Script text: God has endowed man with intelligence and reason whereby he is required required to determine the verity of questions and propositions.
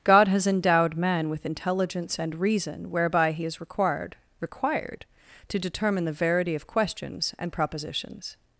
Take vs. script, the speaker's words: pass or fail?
pass